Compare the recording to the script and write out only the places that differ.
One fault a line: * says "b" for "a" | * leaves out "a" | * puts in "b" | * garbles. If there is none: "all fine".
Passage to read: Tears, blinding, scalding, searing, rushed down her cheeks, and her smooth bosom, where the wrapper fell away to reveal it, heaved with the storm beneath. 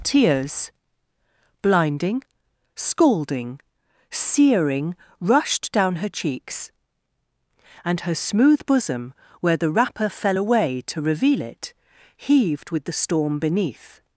all fine